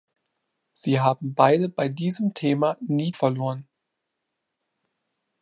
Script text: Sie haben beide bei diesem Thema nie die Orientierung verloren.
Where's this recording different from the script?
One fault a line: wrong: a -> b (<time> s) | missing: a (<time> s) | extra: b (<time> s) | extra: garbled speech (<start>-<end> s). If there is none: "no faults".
missing: die Orientierung (3.1 s)